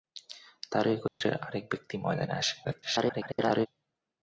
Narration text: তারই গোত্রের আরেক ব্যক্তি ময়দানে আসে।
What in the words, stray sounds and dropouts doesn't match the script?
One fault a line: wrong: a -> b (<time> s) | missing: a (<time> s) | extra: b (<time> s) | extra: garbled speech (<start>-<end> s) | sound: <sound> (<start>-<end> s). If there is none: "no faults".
sound: dropout (1.1-1.2 s)
extra: garbled speech (2.6-3.7 s)